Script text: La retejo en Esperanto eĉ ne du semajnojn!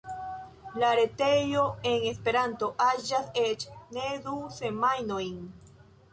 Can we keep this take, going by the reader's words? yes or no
no